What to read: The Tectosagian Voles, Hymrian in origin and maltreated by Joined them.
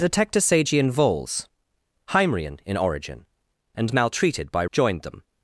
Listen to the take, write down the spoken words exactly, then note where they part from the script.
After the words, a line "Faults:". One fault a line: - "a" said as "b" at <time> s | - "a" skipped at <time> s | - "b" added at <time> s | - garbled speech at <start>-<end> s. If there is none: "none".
The Tectosagian Voles, Hymrian in origin and maltreated by Joined them.
Faults:
none